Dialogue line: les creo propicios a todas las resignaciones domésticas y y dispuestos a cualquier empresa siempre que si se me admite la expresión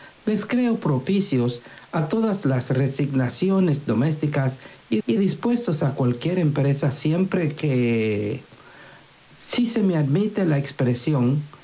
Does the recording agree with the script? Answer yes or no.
yes